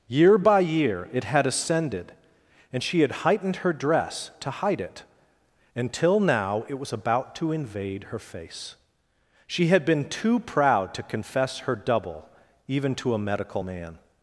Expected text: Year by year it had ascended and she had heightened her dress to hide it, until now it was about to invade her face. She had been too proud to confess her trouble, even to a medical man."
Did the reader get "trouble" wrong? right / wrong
wrong